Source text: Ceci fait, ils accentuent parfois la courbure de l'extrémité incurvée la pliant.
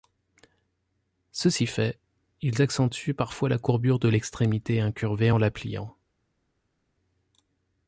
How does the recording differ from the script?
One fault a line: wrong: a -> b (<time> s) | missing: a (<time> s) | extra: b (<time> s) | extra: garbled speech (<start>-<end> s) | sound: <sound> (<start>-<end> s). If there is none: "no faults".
extra: en (5.3 s)